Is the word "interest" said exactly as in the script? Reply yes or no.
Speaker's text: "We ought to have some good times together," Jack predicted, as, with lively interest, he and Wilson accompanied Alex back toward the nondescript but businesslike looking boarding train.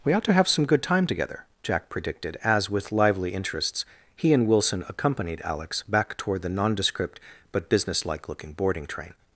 no